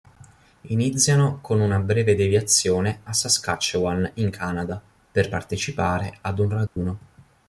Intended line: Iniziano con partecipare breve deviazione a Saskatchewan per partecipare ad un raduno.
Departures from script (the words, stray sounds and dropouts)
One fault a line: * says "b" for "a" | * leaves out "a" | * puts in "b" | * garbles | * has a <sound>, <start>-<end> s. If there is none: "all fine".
* says "una" for "partecipare"
* puts in "in Canada"
* has a dropout, 6.7-6.8 s